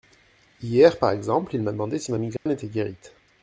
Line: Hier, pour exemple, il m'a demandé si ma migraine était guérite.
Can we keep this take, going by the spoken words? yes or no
no